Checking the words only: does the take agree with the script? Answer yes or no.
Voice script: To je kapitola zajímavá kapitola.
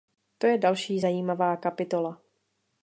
no